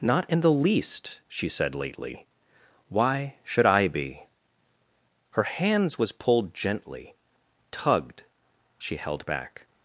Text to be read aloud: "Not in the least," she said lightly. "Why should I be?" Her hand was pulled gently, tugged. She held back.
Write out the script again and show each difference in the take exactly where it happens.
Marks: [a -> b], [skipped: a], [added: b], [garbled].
"Not in the least," she said [lightly. -> lately] "Why should I be?" Her [hand -> hands] was pulled gently, tugged. She held back.